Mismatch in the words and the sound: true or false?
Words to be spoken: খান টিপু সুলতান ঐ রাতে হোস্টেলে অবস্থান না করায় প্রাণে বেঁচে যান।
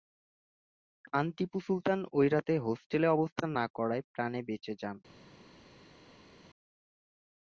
false